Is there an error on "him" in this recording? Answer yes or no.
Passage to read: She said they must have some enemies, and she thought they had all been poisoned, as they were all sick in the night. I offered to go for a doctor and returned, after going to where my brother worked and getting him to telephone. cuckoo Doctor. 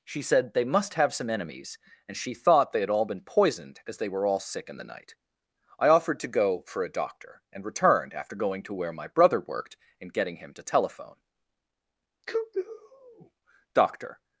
no